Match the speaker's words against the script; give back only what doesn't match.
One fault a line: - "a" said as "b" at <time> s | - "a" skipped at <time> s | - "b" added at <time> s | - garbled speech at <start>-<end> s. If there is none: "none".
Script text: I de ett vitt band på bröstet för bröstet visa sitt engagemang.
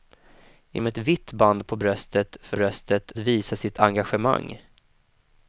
none